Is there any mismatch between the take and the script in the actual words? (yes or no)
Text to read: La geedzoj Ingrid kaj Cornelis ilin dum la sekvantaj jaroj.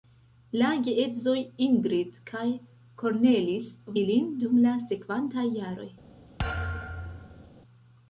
no